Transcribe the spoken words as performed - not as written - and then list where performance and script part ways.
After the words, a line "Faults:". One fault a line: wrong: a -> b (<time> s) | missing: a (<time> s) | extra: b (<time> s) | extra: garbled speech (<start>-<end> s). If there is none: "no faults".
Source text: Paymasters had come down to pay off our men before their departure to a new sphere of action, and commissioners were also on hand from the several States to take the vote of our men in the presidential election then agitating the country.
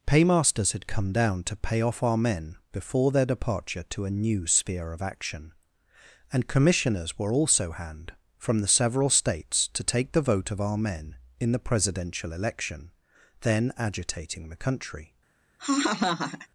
Paymasters had come down to pay off our men before their departure to a new sphere of action, and commissioners were also hand from the several States to take the vote of our men in the presidential election then agitating the country.
Faults:
missing: on (7.7 s)